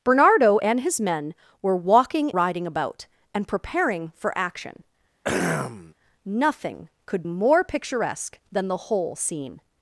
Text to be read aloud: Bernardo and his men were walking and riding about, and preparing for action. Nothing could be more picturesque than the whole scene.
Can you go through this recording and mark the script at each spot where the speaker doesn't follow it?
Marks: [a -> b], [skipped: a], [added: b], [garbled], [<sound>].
Bernardo and his men were walking [skipped: and] riding about, and preparing for action. [throat clearing] Nothing could [skipped: be] more picturesque than the whole scene.